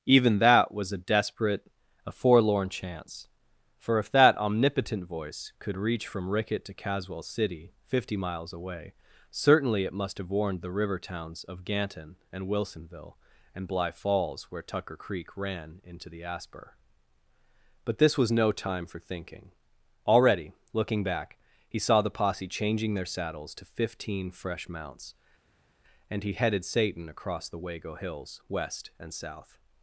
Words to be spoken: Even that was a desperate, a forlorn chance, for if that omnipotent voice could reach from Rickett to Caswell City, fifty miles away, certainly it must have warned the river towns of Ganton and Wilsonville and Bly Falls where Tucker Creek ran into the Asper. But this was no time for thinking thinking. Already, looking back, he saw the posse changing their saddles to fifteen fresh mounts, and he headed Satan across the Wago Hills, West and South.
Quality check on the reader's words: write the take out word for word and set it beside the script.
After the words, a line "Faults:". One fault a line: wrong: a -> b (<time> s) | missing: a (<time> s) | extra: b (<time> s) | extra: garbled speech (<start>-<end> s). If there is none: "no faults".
Even that was a desperate, a forlorn chance, for if that omnipotent voice could reach from Rickett to Caswell City, fifty miles away, certainly it must have warned the river towns of Ganton and Wilsonville and Bly Falls where Tucker Creek ran into the Asper. But this was no time for thinking. Already, looking back, he saw the posse changing their saddles to fifteen fresh mounts, and he headed Satan across the Wago Hills, West and South.
Faults:
missing: thinking (19.5 s)